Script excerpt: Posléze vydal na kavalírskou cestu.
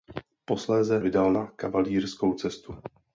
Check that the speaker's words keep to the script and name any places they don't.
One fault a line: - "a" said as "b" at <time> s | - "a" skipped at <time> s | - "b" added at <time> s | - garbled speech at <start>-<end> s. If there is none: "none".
none